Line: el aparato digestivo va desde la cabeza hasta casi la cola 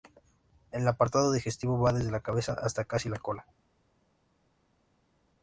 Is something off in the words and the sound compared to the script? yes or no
no